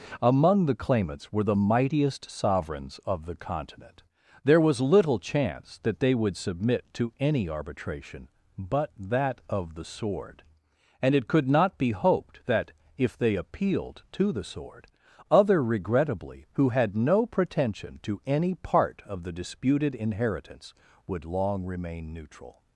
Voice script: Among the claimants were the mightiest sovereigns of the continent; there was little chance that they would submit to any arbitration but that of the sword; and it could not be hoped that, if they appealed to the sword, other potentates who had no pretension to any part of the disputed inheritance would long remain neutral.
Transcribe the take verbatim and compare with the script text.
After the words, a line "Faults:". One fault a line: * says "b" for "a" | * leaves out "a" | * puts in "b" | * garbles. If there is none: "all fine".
Among the claimants were the mightiest sovereigns of the continent; there was little chance that they would submit to any arbitration but that of the sword; and it could not be hoped that, if they appealed to the sword, other regrettably who had no pretension to any part of the disputed inheritance would long remain neutral.
Faults:
* says "regrettably" for "potentates"